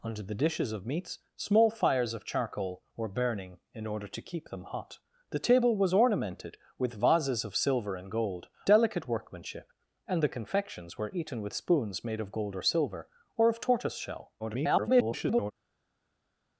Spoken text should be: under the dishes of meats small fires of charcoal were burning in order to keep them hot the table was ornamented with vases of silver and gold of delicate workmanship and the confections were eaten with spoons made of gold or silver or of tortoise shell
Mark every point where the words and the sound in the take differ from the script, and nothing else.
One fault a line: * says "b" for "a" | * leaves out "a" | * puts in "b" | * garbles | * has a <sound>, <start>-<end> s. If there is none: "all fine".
* leaves out "of"
* garbles